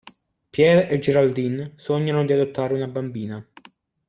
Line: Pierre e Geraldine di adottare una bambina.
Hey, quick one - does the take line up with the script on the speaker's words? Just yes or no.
no